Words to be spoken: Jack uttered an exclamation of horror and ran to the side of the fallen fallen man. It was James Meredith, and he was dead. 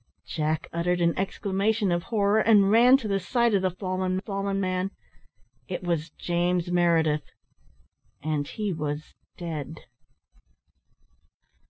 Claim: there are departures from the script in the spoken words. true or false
false